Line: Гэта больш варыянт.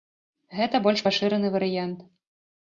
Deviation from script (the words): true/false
true